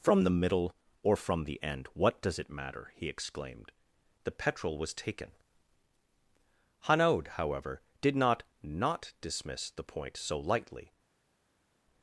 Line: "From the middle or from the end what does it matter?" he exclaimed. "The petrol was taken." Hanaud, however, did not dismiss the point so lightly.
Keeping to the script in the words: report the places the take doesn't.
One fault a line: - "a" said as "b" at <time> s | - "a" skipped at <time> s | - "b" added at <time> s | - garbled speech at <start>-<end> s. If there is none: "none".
- "not" added at 8.6 s